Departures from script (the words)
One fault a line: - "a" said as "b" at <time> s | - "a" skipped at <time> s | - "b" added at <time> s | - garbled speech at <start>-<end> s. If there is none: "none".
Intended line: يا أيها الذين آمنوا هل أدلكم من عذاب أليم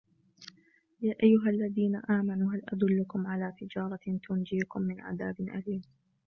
- "على تجارة تنجيكم" added at 3.3 s